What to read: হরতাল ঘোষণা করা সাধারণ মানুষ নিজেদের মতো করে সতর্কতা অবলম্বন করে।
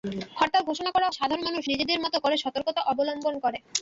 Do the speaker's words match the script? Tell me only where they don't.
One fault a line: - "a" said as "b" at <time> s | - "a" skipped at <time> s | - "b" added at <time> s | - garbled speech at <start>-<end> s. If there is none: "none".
none